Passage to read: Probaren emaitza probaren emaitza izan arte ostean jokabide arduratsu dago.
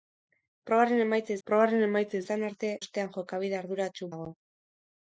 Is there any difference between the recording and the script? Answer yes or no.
no